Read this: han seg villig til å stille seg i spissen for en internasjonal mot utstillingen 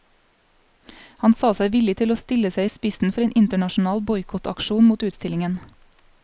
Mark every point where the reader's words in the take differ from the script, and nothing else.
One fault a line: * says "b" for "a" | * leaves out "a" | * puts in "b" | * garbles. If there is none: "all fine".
* puts in "sa"
* puts in "boikottaksjon"